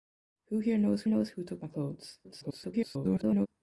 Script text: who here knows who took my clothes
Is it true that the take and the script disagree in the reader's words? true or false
true